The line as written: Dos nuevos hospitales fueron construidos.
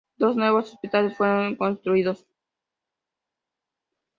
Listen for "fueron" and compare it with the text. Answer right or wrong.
right